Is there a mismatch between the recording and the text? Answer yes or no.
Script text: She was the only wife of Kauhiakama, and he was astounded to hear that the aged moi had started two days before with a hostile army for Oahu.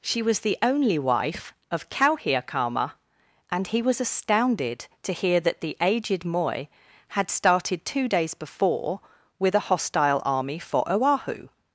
no